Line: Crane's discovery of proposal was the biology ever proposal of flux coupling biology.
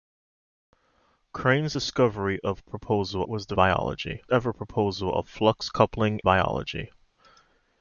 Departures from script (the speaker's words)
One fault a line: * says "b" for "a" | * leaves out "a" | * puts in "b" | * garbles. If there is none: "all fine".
all fine